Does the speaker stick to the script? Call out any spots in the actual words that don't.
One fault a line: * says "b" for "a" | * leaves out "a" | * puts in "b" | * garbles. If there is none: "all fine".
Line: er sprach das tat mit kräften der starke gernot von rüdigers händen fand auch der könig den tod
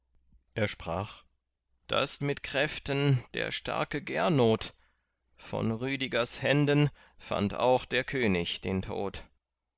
* leaves out "tat"